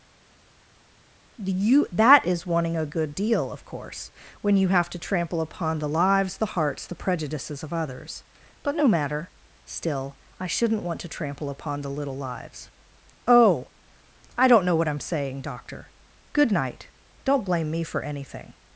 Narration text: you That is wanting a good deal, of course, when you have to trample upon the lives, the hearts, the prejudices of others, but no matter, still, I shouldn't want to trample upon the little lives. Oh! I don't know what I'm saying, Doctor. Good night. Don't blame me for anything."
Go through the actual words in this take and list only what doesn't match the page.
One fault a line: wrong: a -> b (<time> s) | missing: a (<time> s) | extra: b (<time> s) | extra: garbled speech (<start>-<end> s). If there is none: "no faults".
no faults